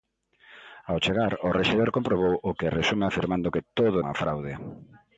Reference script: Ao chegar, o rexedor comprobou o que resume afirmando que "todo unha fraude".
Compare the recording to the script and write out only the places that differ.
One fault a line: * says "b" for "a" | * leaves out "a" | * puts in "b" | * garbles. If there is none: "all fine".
all fine